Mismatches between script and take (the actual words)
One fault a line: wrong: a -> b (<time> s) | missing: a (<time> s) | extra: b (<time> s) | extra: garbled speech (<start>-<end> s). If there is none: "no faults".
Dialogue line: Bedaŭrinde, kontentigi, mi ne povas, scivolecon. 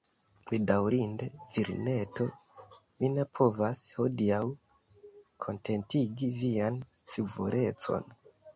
wrong: kontentigi -> virineto (1.6 s)
extra: hodiaŭ kontentigi vian (4.0 s)